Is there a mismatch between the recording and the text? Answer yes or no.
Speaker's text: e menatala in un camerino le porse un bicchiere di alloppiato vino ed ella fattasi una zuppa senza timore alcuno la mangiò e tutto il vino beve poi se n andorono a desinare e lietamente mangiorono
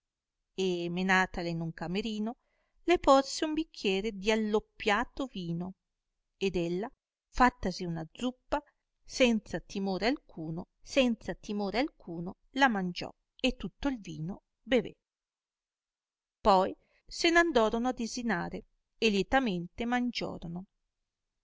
yes